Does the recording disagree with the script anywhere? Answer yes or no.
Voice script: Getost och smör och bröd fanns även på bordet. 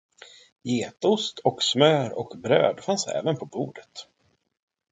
no